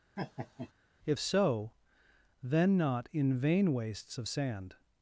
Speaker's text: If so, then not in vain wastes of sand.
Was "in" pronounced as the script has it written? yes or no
yes